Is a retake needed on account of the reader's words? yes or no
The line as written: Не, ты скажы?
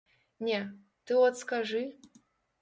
yes